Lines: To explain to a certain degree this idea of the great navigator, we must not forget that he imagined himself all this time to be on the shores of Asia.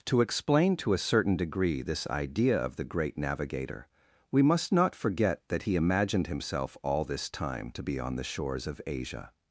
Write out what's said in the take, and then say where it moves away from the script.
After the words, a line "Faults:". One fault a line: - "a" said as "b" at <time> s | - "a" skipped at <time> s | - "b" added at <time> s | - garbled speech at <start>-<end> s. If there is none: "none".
To explain to a certain degree this idea of the great navigator, we must not forget that he imagined himself all this time to be on the shores of Asia.
Faults:
none